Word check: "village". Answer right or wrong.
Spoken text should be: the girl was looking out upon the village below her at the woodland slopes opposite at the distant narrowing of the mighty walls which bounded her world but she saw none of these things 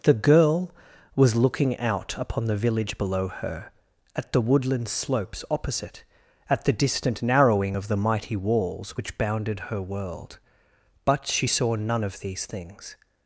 right